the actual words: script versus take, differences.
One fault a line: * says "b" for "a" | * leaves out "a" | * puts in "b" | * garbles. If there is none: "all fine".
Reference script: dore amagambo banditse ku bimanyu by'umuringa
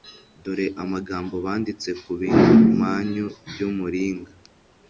all fine